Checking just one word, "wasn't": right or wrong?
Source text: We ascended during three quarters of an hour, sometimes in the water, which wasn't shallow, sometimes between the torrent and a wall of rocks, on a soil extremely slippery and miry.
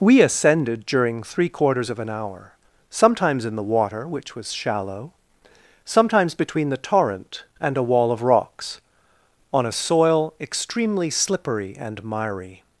wrong